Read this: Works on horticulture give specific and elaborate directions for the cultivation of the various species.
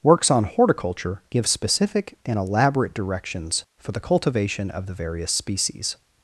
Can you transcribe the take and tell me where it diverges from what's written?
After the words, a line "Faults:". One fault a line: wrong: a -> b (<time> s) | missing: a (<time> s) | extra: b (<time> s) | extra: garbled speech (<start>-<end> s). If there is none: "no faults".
Works on horticulture give specific and elaborate directions for the cultivation of the various species.
Faults:
no faults